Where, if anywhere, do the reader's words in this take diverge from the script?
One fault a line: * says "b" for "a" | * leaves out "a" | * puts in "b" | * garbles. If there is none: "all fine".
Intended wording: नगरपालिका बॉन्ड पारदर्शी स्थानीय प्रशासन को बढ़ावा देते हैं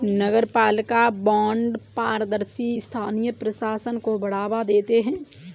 all fine